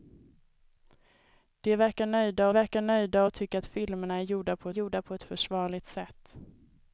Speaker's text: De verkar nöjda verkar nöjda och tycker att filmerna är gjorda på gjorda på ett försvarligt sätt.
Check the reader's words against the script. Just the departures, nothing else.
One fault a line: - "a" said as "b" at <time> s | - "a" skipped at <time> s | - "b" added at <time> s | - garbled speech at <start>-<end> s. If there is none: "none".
none